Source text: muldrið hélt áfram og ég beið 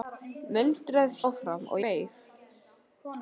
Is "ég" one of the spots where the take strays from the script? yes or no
yes